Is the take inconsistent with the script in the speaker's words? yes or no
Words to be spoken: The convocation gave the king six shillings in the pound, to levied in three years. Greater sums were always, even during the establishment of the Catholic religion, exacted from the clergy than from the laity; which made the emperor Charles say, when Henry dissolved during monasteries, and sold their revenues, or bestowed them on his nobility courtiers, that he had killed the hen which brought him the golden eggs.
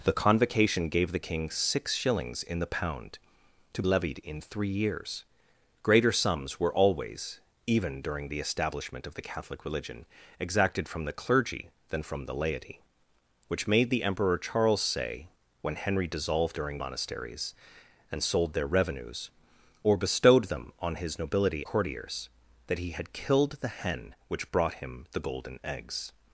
no